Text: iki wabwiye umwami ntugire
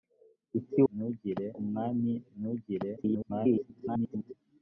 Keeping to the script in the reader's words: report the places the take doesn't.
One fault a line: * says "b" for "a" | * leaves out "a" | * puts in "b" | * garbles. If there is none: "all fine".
* says "ntugire" for "wabwiye"
* garbles